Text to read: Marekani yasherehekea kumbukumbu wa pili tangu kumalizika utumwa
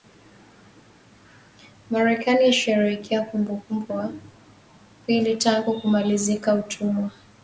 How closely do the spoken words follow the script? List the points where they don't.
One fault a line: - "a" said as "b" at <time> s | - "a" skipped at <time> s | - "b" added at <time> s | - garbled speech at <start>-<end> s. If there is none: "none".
none